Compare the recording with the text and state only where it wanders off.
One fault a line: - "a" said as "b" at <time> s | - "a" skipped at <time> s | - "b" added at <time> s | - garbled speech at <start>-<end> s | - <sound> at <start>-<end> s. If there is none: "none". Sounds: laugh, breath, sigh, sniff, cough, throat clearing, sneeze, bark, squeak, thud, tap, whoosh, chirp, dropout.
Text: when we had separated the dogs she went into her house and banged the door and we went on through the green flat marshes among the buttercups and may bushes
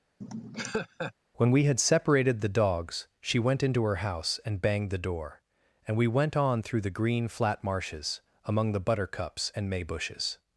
- laugh at 0.2-1.1 s